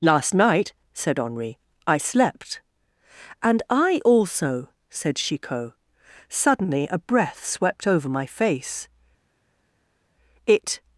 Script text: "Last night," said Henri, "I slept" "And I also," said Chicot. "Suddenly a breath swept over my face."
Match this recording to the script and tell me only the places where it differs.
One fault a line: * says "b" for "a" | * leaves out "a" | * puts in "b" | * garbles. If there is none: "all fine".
* puts in "It"